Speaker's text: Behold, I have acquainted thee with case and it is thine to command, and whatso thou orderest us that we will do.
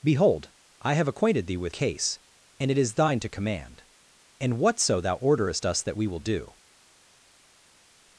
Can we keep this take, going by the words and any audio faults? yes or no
yes